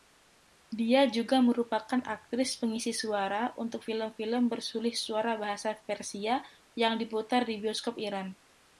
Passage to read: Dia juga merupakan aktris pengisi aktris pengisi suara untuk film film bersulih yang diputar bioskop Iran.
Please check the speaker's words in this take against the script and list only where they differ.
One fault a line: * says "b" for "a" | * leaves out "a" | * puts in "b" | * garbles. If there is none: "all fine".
* leaves out "aktris pengisi"
* puts in "suara bahasa Persia"
* puts in "di"